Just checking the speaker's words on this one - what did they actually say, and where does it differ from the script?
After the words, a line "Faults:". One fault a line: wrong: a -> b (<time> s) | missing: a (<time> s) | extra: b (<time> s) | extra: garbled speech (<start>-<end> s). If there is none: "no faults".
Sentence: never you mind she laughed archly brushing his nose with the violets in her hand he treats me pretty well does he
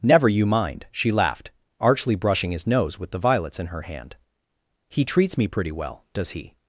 never you mind she laughed archly brushing his nose with the violets in her hand he treats me pretty well does he
Faults:
no faults